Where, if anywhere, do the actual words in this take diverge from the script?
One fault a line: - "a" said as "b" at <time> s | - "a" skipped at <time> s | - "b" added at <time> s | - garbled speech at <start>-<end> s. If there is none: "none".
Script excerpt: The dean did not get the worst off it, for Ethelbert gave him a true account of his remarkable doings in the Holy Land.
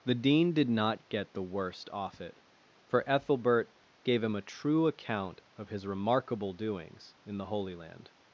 none